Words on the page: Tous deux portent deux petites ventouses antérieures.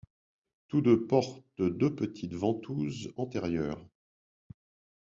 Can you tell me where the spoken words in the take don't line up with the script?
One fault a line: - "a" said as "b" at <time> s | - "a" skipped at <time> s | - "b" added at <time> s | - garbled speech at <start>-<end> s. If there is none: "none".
none